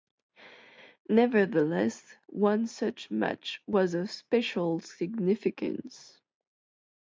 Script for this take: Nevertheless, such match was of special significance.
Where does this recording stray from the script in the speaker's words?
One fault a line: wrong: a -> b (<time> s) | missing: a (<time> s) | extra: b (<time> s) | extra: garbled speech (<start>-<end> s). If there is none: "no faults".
extra: one (2.2 s)